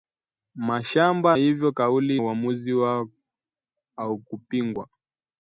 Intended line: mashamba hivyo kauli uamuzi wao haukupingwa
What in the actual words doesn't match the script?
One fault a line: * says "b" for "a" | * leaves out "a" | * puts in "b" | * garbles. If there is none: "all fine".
all fine